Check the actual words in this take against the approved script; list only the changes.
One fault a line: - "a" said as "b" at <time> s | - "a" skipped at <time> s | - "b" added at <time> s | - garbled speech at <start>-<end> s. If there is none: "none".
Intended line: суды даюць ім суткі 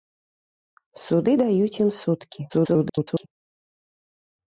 - garbled speech at 2.5-3.3 s